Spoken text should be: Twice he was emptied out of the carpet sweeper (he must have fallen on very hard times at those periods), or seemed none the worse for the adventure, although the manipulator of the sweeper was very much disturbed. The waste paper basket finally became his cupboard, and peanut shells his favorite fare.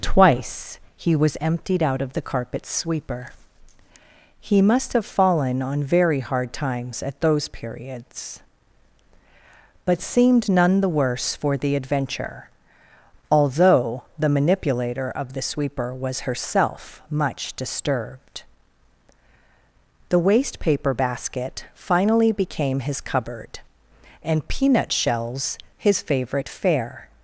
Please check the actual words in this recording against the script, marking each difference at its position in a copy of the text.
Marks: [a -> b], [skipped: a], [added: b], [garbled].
Twice he was emptied out of the carpet sweeper (he must have fallen on very hard times at those periods), [or -> but] seemed none the worse for the adventure, although the manipulator of the sweeper was [very -> herself] much disturbed. The waste paper basket finally became his cupboard, and peanut shells his favorite fare.